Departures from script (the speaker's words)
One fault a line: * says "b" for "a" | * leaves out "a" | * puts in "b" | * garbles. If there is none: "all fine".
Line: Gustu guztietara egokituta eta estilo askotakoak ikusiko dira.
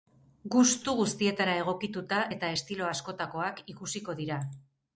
all fine